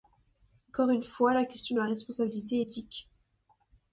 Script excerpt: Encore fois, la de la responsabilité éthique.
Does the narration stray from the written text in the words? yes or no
yes